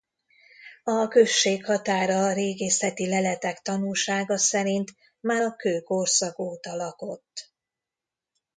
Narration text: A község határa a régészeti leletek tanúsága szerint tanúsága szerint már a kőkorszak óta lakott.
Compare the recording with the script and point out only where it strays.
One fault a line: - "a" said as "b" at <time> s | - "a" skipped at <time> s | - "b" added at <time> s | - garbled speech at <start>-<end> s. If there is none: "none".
- "tanúsága szerint" skipped at 4.9 s